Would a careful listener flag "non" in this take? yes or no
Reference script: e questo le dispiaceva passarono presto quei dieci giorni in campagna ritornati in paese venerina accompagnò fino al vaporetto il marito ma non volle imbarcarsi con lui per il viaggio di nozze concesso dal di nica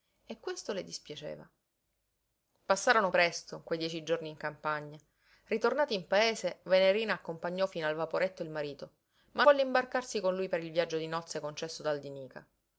yes